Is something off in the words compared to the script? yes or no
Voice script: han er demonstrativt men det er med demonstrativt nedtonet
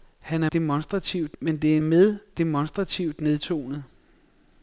no